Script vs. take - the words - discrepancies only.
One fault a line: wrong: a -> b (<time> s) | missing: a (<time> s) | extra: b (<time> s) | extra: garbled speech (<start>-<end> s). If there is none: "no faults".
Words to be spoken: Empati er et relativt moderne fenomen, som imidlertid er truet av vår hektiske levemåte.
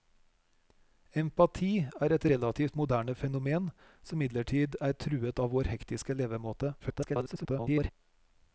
extra: garbled speech (6.8-7.9 s)